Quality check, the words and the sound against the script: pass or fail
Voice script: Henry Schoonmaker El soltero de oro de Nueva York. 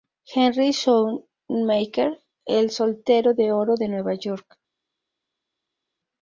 pass